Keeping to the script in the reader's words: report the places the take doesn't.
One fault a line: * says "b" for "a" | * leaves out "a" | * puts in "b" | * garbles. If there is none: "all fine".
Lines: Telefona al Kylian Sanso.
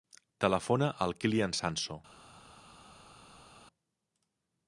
all fine